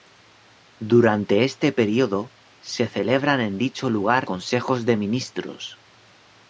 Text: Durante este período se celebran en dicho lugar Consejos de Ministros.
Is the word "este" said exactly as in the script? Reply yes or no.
yes